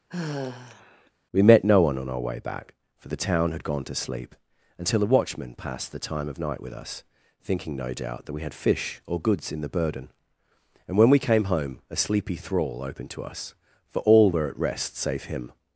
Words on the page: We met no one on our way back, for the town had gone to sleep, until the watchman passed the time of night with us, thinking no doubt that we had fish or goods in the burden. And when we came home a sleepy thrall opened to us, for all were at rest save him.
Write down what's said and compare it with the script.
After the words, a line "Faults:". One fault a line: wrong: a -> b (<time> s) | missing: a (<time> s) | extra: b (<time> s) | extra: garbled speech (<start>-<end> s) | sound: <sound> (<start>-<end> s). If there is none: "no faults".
We met no one on our way back, for the town had gone to sleep, until a watchman passed the time of night with us, thinking no doubt that we had fish or goods in the burden. And when we came home a sleepy thrall opened to us, for all were at rest save him.
Faults:
sound: sigh (0.1-1.1 s)
wrong: the -> a (5.0 s)